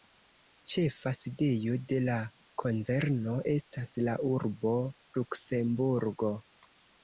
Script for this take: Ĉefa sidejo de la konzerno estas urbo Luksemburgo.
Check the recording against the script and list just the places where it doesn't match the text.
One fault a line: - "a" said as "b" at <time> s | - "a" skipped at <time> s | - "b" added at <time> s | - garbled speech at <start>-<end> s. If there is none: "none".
- "la" added at 4.1 s